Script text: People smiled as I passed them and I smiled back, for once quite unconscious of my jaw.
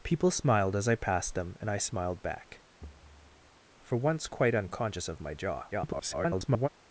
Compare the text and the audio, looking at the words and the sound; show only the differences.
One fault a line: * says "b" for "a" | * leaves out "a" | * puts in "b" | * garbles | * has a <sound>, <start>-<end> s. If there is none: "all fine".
* has a thud, 2.8-3.6 s
* garbles